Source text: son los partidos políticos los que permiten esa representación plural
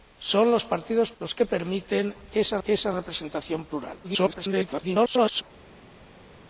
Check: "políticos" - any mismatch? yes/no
yes